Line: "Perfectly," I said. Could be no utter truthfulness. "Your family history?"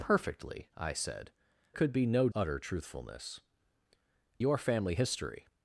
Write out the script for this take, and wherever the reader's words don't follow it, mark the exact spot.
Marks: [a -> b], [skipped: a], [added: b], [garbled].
"Perfectly," I said. Could be no utter truthfulness. "Your family history?"